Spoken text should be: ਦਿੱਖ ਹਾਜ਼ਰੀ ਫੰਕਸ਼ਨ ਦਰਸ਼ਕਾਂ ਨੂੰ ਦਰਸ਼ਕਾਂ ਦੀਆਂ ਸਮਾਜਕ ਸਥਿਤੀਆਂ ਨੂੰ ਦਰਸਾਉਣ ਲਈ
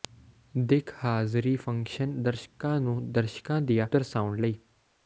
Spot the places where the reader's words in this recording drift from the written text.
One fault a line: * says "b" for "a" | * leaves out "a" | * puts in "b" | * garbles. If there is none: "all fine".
* leaves out "ਸਮਾਜਕ ਸਥਿਤੀਆਂ ਨੂੰ"